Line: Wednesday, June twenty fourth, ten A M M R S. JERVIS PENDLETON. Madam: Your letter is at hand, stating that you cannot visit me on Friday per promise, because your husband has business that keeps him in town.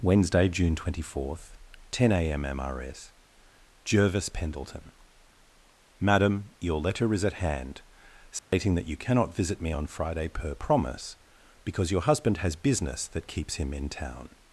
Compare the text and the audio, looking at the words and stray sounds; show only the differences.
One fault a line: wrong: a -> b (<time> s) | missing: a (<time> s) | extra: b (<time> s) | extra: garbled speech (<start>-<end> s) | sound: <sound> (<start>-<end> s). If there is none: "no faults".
sound: dropout (8.4-8.5 s)